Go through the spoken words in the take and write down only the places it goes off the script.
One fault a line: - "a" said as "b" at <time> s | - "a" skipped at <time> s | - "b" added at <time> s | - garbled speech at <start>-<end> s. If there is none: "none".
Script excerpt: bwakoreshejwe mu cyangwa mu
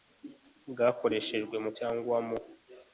none